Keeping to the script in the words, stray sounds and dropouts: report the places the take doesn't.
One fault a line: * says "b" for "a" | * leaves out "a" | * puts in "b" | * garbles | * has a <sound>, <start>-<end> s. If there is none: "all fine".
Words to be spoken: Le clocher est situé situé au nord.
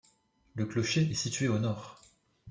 * leaves out "situé"